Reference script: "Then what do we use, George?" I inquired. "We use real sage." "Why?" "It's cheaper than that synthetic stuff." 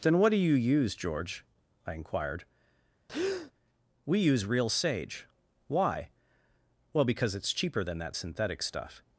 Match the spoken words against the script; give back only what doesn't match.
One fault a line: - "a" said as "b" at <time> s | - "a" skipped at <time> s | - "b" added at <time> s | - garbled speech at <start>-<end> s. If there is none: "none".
- "we" said as "you" at 0.4 s
- "Well because" added at 6.9 s